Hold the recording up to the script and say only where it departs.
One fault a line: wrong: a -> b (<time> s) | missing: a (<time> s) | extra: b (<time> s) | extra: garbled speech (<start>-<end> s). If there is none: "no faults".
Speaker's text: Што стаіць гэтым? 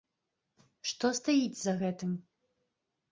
extra: за (1.6 s)